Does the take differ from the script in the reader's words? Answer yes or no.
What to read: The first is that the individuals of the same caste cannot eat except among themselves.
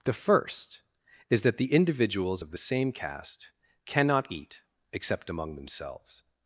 no